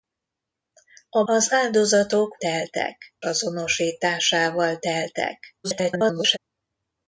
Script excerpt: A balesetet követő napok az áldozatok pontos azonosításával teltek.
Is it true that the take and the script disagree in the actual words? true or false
true